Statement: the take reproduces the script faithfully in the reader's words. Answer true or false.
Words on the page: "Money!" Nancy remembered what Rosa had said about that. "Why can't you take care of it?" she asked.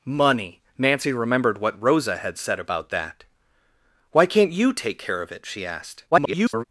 false